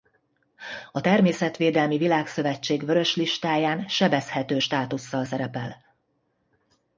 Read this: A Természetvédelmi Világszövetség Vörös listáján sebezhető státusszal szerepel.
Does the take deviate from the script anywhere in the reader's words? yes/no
no